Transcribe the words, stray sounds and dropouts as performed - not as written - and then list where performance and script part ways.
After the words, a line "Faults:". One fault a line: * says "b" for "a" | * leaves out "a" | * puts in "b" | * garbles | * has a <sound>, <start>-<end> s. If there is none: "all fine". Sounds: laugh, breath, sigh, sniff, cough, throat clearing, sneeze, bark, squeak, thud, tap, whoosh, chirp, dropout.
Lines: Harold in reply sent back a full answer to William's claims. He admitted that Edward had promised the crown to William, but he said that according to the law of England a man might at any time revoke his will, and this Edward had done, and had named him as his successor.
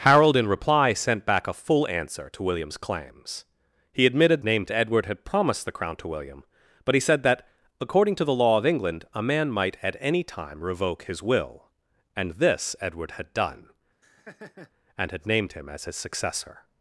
Harold in reply sent back a full answer to William's claims. He admitted named Edward had promised the crown to William, but he said that according to the law of England a man might at any time revoke his will, and this Edward had done, and had named him as his successor.
Faults:
* says "named" for "that"
* has a laugh, 14.0-14.7 s